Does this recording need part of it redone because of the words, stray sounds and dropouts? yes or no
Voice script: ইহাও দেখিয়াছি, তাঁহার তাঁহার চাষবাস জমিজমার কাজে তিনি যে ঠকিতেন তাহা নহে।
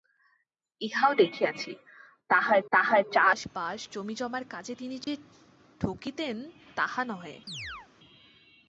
yes